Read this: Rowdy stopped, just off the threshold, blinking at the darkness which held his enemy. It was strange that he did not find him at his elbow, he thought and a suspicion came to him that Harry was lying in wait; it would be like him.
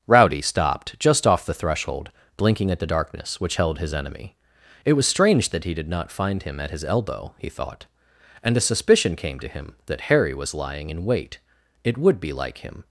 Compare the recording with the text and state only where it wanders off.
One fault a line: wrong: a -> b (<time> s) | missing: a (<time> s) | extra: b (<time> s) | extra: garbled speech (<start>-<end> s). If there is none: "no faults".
no faults